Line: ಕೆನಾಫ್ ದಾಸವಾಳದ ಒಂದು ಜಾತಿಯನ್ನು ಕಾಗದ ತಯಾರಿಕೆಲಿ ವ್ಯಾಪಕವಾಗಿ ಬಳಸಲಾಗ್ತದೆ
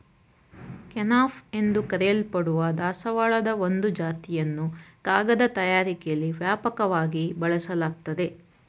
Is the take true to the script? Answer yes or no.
no